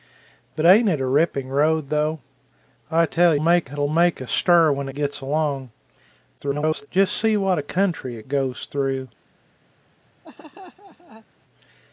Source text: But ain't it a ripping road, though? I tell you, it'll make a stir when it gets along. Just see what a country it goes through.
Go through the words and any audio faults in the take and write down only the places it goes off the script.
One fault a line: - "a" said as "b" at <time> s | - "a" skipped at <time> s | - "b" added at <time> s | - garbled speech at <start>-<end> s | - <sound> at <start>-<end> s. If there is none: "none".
- "you" said as "make" at 3.4 s
- "it" skipped at 4.9 s
- garbled speech at 6.4-6.9 s
- laugh at 10.2-11.3 s